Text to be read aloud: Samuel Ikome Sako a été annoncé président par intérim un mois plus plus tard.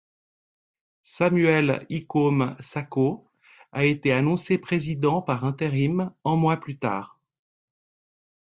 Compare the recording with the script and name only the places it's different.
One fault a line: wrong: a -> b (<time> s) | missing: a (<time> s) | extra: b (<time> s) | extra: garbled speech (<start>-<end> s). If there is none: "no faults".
missing: plus (6.8 s)